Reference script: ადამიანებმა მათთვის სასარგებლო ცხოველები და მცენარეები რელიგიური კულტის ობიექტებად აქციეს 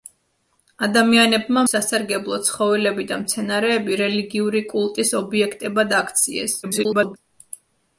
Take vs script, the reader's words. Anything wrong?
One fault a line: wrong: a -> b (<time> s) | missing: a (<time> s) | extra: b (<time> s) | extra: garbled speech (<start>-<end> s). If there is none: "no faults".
missing: მათთვის (1.6 s)
extra: garbled speech (6.6-7.2 s)